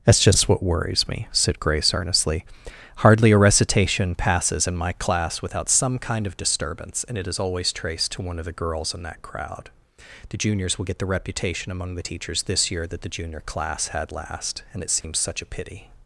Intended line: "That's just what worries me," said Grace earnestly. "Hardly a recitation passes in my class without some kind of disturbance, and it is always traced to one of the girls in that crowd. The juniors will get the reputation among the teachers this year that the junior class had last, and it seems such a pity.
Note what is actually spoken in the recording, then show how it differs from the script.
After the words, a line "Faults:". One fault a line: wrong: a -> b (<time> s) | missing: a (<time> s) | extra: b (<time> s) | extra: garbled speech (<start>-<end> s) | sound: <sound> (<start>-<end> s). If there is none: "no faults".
"That's just what worries me," said Grace earnestly. "Hardly a recitation passes in my class without some kind of disturbance, and it is always traced to one of the girls in that crowd. The juniors will get the reputation among the teachers this year that the junior class had last, and it seems such a pity.
Faults:
sound: dropout (15.0-15.0 s)